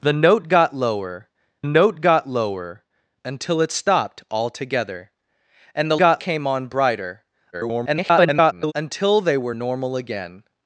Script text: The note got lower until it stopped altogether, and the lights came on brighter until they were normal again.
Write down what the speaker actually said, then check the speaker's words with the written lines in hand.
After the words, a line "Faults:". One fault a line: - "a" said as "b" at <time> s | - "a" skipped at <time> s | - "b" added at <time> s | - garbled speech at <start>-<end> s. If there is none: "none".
The note got lower note got lower until it stopped altogether, and the got came on brighter [garbled] until they were normal again.
Faults:
- "note got lower" added at 1.6 s
- "lights" said as "got" at 6.0 s
- garbled speech at 7.5-8.7 s